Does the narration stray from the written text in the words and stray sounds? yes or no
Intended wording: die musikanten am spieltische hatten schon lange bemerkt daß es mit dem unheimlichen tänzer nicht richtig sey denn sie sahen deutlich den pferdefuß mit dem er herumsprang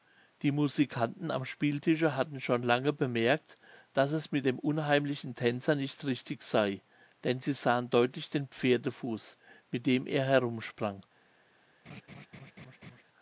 yes